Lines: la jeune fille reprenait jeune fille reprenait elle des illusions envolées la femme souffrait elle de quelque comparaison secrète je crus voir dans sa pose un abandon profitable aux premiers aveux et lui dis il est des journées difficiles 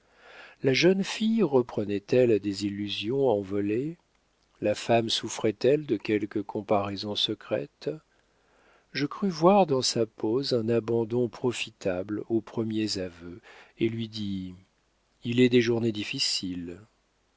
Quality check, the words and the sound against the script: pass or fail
fail